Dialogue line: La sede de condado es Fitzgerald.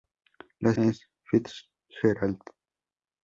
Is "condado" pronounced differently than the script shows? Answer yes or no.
yes